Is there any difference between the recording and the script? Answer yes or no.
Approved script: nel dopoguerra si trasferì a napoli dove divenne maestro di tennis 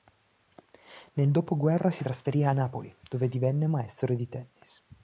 no